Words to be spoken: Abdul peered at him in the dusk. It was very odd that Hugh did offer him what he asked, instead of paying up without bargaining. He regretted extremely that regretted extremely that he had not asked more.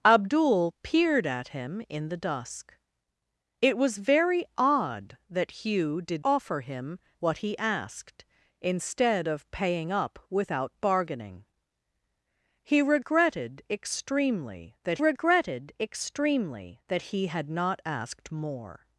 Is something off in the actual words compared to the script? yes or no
no